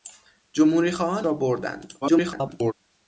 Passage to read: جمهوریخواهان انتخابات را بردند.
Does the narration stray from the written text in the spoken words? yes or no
yes